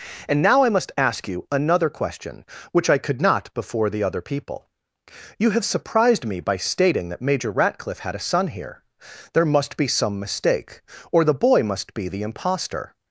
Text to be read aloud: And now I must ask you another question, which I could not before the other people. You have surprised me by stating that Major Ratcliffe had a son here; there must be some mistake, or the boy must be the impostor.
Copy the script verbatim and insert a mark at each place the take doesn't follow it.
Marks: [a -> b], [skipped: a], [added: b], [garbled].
And now I must ask you another question, which I could not before the other people. You have surprised me by stating that Major Ratcliffe had a son here; there must be some mistake, or the boy must be the impostor.